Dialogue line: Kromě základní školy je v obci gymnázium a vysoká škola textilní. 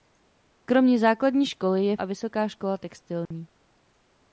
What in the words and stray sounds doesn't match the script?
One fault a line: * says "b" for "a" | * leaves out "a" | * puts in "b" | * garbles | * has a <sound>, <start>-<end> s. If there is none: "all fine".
* leaves out "obci gymnázium"
* has a dropout, 3.3-3.3 s